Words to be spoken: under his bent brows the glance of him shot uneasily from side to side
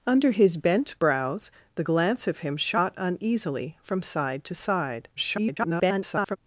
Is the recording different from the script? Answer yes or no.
yes